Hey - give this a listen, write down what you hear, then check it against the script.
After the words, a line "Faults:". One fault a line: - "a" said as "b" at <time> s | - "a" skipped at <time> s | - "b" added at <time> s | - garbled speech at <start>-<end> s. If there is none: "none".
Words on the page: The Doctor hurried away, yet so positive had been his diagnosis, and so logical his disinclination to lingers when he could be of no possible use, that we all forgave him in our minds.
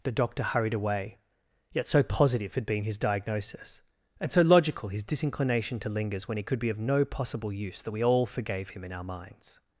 The Doctor hurried away, yet so positive had been his diagnosis, and so logical his disinclination to lingers when he could be of no possible use, that we all forgave him in our minds.
Faults:
none